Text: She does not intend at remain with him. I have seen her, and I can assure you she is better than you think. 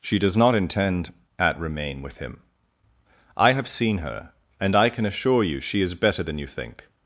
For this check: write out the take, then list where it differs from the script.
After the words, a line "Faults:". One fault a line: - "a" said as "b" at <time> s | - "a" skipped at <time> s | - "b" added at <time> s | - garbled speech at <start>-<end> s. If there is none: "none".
She does not intend at remain with him. I have seen her, and I can assure you she is better than you think.
Faults:
none